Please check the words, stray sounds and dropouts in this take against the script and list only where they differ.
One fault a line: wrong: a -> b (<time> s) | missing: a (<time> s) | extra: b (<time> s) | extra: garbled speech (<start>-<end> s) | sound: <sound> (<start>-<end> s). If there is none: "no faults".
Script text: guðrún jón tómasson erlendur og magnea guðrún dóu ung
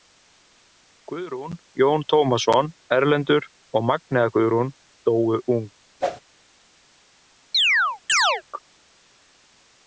sound: whoosh (6.0-6.2 s)
sound: chirp (7.5-8.4 s)